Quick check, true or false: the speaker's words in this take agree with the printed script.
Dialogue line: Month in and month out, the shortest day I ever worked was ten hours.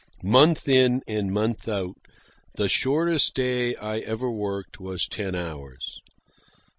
true